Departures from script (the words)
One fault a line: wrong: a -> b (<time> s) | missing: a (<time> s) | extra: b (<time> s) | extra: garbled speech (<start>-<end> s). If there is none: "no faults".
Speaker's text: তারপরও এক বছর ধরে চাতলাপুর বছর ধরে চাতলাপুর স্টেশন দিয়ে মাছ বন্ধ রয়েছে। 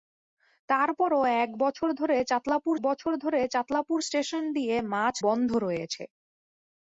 no faults